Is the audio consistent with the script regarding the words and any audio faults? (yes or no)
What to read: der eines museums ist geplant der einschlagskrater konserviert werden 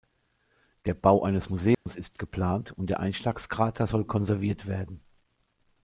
no